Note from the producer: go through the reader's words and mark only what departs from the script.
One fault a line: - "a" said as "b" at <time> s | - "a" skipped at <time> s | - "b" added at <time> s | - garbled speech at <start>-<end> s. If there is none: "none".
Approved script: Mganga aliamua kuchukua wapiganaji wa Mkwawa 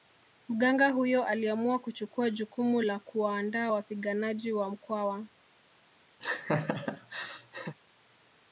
- "huyo" added at 0.9 s
- "jukumu la kuwaandaa" added at 2.3 s